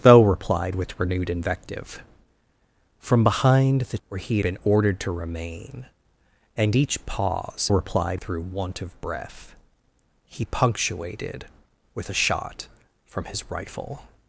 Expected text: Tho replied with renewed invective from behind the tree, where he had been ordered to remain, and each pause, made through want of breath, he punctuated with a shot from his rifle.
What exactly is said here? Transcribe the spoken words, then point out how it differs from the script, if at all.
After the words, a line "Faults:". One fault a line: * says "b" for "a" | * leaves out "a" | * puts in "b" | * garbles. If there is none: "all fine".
Tho replied with renewed invective from behind the where he been ordered to remain, and each pause, replied through want of breath, he punctuated with a shot from his rifle.
Faults:
* leaves out "tree"
* leaves out "had"
* says "replied" for "made"